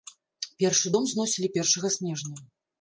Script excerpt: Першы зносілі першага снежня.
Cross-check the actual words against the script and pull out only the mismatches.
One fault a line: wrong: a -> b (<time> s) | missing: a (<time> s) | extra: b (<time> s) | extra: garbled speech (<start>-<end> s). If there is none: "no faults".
extra: дом (0.9 s)